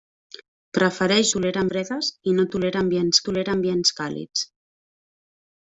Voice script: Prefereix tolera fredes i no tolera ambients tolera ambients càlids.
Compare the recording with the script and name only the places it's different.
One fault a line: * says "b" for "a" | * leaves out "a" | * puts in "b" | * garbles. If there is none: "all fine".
all fine